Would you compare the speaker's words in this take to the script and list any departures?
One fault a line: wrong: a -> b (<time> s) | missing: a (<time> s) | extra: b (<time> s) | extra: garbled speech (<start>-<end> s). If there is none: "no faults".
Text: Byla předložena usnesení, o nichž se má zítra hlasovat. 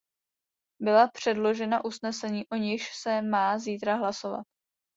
no faults